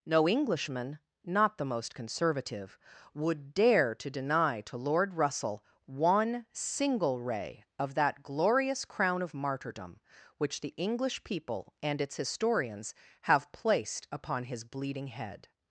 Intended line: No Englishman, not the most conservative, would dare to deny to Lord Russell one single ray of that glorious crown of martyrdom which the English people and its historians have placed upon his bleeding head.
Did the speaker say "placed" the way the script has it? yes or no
yes